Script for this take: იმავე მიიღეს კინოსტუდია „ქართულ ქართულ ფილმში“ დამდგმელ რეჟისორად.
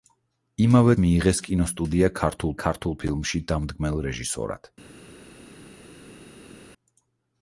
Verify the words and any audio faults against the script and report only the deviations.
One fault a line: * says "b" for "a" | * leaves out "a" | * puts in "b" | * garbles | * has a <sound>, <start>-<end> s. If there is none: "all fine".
all fine